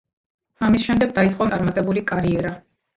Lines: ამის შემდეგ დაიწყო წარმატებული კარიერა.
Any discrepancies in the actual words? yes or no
no